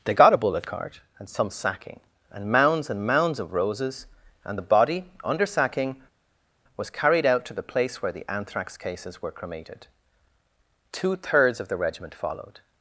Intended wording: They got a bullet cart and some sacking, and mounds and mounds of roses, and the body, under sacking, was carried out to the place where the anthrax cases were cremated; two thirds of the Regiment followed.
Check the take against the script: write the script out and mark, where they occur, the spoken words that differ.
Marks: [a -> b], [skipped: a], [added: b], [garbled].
They got a bullet cart and some sacking, and mounds and mounds of roses, and the body, under sacking, was carried out to the place where the anthrax cases were cremated; two thirds of the Regiment followed.